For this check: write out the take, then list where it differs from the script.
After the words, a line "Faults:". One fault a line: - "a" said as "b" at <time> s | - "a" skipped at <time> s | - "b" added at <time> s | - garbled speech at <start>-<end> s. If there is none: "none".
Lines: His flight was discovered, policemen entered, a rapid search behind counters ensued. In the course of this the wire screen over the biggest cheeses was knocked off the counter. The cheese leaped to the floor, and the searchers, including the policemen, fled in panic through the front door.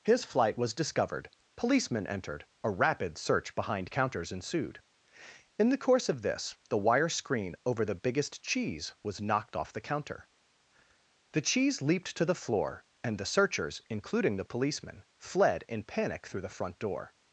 His flight was discovered, policemen entered, a rapid search behind counters ensued. In the course of this the wire screen over the biggest cheese was knocked off the counter. The cheese leaped to the floor, and the searchers, including the policemen, fled in panic through the front door.
Faults:
- "cheeses" said as "cheese" at 8.4 s